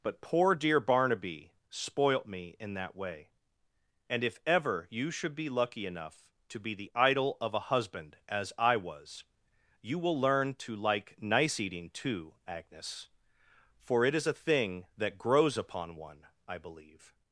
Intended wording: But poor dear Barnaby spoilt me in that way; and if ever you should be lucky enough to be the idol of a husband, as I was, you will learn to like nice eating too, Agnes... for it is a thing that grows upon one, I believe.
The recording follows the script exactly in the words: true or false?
true